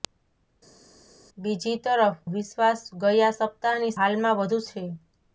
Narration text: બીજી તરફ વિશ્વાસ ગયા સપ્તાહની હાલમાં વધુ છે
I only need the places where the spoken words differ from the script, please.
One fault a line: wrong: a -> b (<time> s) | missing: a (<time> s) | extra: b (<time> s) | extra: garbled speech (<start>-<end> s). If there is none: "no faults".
no faults